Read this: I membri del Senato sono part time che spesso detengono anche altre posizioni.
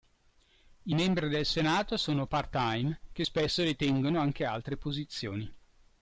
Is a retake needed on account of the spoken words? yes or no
no